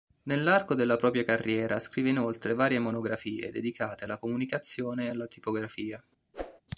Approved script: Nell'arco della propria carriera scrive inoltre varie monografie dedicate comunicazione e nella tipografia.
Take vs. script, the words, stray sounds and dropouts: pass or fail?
fail